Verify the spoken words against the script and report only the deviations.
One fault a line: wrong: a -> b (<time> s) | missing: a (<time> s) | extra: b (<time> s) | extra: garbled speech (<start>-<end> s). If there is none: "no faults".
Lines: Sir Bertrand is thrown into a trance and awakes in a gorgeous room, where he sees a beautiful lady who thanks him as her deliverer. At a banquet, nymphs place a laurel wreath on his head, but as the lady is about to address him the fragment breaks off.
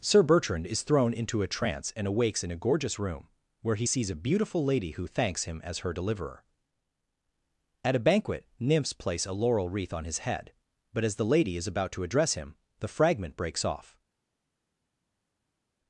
no faults